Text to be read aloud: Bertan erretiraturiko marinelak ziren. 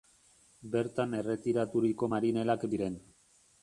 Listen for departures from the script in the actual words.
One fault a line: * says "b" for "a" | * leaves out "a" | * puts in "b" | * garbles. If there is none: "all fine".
all fine